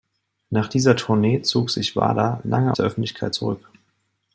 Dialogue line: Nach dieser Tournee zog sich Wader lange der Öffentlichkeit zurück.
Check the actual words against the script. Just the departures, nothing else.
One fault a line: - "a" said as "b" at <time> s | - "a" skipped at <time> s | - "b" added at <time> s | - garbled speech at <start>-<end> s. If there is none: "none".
none